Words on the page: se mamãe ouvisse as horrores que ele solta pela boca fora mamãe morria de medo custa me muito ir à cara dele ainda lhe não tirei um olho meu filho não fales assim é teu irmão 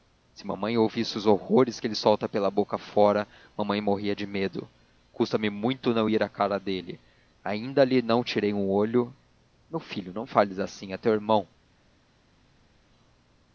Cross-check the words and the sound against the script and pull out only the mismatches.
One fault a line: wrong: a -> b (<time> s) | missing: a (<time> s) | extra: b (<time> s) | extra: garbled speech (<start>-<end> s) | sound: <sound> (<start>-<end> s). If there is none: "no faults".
wrong: as -> os (1.1 s)
extra: não (5.9 s)